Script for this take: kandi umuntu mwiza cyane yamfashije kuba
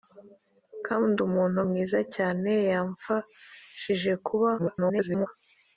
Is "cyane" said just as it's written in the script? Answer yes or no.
yes